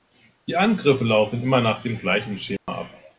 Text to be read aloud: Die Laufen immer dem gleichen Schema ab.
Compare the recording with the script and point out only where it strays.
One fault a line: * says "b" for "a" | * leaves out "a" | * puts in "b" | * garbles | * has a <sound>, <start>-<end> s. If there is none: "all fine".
* puts in "Angriffe"
* puts in "nach"
* has a dropout, 2.6-2.7 s